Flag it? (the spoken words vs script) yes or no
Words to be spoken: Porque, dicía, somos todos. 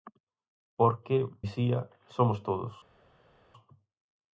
no